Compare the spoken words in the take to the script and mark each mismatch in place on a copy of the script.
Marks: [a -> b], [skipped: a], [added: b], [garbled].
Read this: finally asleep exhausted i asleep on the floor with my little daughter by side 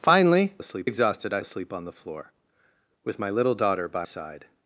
finally asleep exhausted i asleep on the floor with my little daughter by side